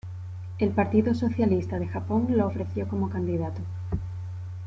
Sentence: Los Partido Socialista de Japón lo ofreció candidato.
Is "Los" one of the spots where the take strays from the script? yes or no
yes